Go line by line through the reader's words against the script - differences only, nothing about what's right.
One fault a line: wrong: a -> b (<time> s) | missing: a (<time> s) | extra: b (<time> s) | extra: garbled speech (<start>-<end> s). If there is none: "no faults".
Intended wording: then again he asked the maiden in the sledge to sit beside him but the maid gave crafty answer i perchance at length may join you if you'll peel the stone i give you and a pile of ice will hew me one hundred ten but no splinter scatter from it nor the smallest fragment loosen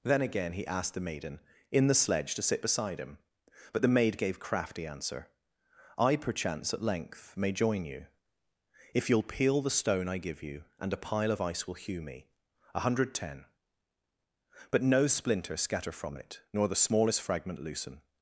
wrong: one -> a (12.7 s)